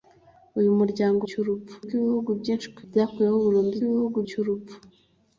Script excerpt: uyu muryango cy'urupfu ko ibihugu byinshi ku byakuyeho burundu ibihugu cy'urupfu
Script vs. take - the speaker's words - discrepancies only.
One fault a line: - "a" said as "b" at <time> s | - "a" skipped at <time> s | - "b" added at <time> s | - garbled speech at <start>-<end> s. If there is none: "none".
none